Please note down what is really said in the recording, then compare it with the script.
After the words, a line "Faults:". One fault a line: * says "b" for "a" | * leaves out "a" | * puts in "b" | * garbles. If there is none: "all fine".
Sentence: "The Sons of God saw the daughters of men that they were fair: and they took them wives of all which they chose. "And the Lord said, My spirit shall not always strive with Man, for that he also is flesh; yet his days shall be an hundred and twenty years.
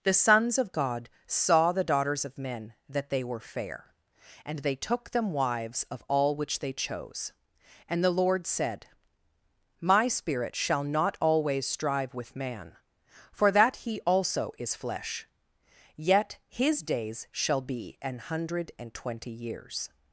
"The Sons of God saw the daughters of men that they were fair: and they took them wives of all which they chose. "And the Lord said, My spirit shall not always strive with Man, for that he also is flesh; yet his days shall be an hundred and twenty years.
Faults:
all fine